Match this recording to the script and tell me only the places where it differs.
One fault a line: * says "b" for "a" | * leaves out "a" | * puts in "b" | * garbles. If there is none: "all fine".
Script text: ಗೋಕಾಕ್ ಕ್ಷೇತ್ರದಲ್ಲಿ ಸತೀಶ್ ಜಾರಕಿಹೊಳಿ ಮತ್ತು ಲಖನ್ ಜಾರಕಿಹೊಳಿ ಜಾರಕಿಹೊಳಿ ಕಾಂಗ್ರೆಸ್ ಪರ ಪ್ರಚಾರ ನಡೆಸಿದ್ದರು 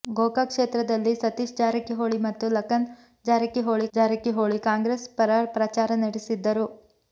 all fine